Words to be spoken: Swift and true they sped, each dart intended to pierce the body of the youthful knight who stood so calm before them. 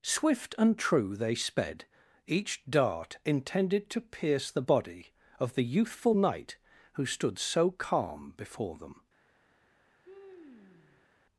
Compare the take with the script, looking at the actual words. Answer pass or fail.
pass